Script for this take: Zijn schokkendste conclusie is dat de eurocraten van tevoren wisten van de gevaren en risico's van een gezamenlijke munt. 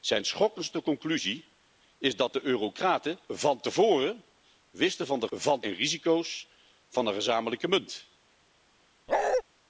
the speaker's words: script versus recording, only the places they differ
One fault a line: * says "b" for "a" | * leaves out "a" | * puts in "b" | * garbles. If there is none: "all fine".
* says "van" for "gevaren"